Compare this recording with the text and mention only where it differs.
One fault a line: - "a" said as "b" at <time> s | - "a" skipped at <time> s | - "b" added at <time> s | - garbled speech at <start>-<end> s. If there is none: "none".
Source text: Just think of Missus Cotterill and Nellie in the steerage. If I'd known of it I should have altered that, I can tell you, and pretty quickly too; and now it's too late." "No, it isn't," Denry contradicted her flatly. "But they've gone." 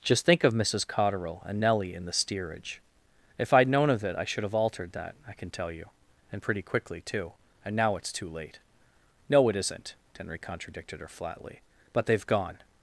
none